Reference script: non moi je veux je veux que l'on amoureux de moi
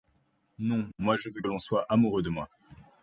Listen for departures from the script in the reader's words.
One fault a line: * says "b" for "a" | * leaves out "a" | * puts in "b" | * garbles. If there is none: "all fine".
* leaves out "je veux"
* puts in "soit"